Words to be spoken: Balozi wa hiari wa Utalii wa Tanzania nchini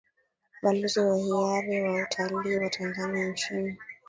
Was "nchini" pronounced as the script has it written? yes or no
yes